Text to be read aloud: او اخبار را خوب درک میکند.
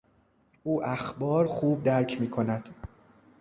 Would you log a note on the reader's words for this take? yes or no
yes